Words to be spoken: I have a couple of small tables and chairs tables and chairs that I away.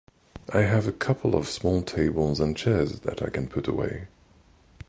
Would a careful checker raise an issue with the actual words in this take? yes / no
yes